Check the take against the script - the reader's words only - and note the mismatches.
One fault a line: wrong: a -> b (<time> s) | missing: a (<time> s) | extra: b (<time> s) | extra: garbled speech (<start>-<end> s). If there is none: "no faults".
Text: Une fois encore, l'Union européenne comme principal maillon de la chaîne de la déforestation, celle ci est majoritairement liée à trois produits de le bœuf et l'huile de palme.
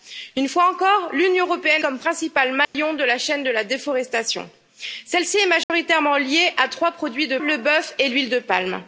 no faults